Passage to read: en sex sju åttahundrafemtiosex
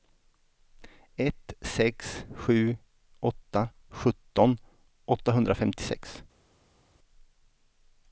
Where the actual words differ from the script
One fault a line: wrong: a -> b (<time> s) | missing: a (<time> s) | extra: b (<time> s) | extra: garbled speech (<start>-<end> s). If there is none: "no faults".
wrong: en -> ett (1.1 s)
extra: åtta sjutton (3.2 s)